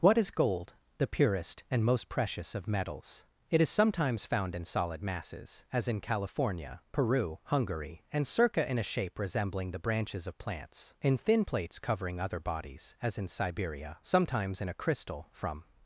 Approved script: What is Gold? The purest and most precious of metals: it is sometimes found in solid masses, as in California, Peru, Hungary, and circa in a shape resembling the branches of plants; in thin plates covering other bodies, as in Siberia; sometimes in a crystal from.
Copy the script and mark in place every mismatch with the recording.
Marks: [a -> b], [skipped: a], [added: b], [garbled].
What is Gold? The purest and most precious of metals: it is sometimes found in solid masses, as in California, Peru, Hungary, and circa in a shape resembling the branches of plants; in thin plates covering other bodies, as in Siberia; sometimes in a crystal from.